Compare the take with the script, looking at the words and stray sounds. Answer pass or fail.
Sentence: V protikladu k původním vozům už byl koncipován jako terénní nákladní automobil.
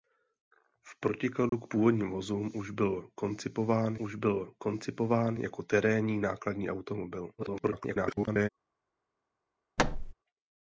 fail